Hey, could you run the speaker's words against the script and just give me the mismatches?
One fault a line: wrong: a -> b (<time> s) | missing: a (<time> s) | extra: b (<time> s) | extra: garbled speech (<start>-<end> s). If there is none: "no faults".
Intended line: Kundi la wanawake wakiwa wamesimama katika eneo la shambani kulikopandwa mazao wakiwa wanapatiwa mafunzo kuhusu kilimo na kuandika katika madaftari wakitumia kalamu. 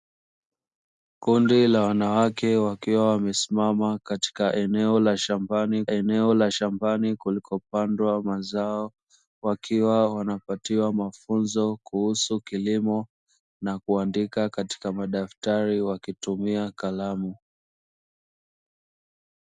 extra: eneo la shambani (5.9 s)